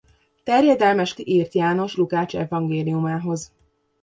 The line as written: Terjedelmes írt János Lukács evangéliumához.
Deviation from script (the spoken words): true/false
false